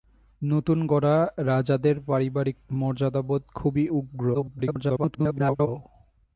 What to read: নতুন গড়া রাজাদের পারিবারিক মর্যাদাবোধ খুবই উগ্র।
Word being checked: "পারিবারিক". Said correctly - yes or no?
yes